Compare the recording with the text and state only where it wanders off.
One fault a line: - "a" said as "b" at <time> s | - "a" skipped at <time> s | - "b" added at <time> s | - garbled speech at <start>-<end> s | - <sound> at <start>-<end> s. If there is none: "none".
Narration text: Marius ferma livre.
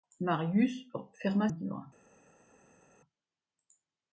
none